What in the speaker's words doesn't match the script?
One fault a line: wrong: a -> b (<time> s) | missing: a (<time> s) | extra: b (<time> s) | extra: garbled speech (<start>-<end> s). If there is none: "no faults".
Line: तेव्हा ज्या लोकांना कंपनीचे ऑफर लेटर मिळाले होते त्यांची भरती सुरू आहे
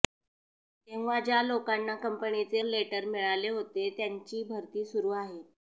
missing: ऑफर (2.6 s)